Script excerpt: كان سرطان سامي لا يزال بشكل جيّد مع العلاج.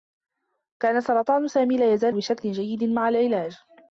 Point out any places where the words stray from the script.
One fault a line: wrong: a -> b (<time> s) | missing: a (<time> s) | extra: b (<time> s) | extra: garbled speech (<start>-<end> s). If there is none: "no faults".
no faults